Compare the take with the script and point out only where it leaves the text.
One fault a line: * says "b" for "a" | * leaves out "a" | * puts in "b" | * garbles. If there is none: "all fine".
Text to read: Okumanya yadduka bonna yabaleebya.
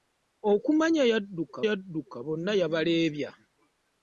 * puts in "yadduka"